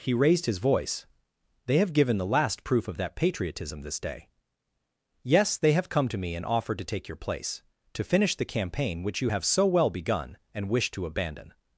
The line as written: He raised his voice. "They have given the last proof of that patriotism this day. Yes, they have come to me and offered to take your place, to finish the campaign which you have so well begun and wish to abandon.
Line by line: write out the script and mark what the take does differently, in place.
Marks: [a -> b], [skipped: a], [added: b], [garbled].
He raised his voice. "They have given the last proof of that patriotism this day. Yes, they have come to me and offered to take your place, to finish the campaign which you have so well begun and wish to abandon.